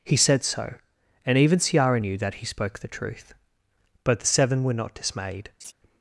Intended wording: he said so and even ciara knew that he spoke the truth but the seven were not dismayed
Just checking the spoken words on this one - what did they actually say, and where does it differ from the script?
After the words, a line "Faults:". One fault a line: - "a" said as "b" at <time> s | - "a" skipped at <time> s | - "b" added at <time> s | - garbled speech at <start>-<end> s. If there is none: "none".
he said so and even ciara knew that he spoke the truth but the seven were not dismayed
Faults:
none